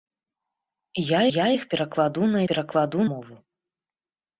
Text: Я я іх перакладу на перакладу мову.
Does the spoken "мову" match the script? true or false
true